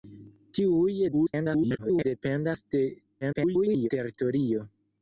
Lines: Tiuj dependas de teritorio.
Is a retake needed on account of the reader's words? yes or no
yes